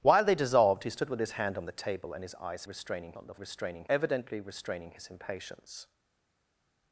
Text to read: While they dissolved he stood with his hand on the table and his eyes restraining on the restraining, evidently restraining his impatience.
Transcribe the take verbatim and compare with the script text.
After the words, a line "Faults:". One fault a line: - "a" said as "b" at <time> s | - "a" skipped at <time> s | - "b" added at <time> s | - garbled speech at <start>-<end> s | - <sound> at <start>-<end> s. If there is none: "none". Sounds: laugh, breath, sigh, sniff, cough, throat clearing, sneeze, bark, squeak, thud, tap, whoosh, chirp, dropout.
While they dissolved he stood with his hand on the table and his eyes restraining on the restraining, evidently restraining his impatience.
Faults:
none